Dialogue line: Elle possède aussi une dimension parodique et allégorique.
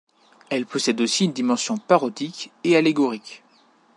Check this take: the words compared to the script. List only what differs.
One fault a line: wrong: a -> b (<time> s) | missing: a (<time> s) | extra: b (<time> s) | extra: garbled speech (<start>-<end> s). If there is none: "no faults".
no faults